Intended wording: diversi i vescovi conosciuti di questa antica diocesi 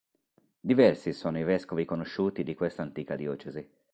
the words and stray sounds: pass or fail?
fail